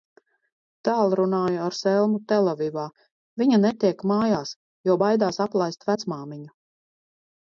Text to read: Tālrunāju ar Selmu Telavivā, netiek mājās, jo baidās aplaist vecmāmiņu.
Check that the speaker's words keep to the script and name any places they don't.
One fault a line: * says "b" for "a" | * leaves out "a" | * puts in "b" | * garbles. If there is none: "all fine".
* puts in "viņa"